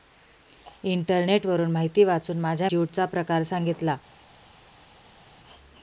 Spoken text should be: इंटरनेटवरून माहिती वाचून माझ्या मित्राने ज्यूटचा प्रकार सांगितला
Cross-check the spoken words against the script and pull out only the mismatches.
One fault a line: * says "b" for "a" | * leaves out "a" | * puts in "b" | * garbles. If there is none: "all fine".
* leaves out "मित्राने"